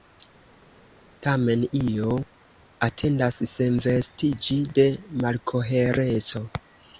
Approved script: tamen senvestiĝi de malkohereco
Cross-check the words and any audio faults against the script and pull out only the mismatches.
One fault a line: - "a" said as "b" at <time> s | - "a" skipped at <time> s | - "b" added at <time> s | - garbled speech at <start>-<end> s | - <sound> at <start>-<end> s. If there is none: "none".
- "io atendas" added at 1.8 s